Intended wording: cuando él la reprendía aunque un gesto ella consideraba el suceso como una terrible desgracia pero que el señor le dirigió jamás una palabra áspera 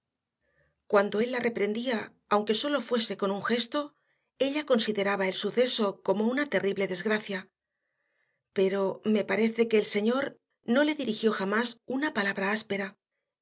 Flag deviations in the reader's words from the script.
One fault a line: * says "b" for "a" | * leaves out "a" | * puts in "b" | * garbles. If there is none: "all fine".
* puts in "sólo fuese con"
* puts in "me parece"
* puts in "no"